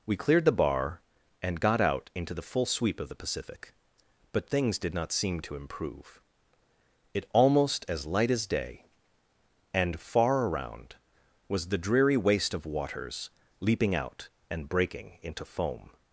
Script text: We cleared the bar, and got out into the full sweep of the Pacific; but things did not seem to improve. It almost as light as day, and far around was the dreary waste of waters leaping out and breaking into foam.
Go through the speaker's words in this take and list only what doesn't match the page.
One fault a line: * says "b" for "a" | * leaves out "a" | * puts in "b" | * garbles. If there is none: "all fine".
all fine